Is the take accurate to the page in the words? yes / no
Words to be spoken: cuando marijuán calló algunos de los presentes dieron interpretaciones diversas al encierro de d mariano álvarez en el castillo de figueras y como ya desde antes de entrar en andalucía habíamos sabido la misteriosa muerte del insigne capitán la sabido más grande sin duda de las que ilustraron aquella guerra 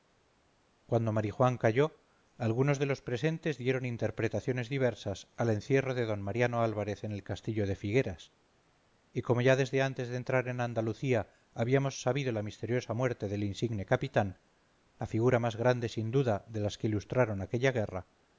no